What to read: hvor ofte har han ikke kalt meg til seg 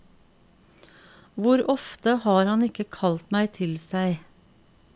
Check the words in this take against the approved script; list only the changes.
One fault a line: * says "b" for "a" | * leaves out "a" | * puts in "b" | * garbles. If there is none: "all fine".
all fine